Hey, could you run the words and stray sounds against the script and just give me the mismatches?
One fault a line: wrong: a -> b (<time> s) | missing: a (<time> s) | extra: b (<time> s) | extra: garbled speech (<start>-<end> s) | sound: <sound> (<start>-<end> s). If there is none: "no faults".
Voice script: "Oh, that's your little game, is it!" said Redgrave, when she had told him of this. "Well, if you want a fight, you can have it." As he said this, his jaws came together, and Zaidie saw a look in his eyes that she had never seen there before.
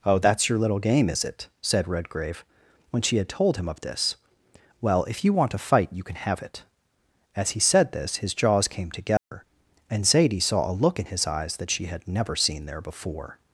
sound: dropout (9.2-9.3 s)